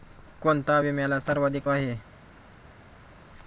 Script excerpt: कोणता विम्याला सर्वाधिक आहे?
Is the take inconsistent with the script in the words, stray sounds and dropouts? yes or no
no